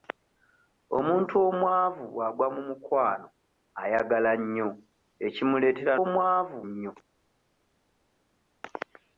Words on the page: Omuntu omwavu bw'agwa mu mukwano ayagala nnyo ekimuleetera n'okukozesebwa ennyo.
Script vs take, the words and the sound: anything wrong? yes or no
yes